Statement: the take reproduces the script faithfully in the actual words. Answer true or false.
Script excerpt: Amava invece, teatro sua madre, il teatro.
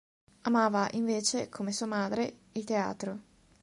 false